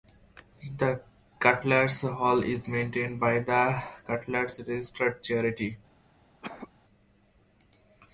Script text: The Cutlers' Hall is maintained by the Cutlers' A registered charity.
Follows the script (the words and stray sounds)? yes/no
no